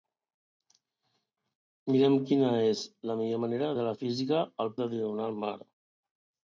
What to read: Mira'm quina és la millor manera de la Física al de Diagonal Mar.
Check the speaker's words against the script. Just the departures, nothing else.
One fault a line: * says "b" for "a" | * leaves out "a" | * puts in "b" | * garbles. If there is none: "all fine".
all fine